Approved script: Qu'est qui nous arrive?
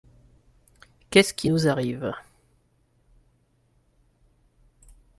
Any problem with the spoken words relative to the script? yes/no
yes